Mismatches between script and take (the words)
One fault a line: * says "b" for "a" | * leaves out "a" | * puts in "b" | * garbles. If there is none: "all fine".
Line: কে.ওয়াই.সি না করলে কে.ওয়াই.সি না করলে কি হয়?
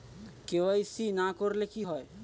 * leaves out "কে.ওয়াই.সি না করলে"